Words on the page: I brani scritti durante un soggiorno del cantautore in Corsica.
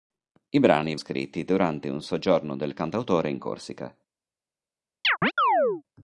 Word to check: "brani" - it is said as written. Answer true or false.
true